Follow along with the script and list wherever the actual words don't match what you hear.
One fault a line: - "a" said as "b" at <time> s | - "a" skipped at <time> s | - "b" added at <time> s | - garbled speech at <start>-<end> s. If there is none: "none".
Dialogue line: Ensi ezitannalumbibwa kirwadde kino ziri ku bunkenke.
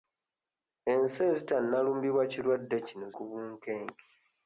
- "ziri" skipped at 3.1 s